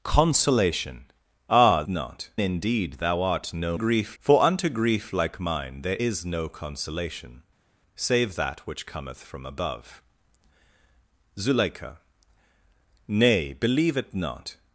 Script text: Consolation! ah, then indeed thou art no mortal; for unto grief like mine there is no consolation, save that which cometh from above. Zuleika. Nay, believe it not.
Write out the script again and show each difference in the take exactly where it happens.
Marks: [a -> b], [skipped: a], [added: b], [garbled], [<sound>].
Consolation! ah, [then -> not] indeed thou art no [mortal; -> grief] for unto grief like mine there is no consolation, save that which cometh from above. Zuleika. Nay, believe it not.